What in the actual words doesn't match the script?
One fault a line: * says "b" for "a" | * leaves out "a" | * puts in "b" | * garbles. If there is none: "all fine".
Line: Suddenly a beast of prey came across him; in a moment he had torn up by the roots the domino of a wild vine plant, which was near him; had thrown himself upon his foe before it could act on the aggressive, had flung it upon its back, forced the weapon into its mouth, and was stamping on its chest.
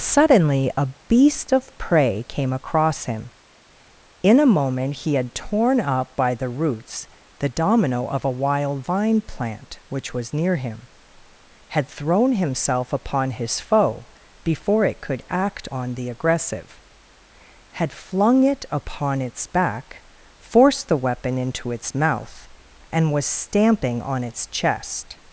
all fine